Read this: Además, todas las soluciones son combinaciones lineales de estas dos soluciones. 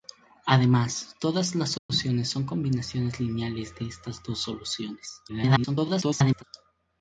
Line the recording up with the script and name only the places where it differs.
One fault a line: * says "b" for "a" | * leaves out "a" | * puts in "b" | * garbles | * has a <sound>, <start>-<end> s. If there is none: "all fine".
* has a dropout, 1.8-1.9 s
* garbles